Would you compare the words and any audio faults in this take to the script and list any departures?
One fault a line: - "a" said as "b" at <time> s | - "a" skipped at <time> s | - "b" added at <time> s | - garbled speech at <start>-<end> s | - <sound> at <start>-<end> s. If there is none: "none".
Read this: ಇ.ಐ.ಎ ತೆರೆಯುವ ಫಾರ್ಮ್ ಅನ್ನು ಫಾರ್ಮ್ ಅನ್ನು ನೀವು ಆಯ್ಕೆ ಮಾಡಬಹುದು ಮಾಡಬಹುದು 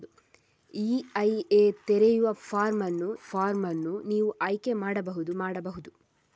none